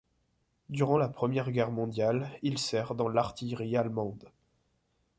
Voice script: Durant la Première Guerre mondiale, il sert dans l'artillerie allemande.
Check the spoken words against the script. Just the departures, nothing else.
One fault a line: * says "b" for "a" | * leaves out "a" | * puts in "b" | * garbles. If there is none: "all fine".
all fine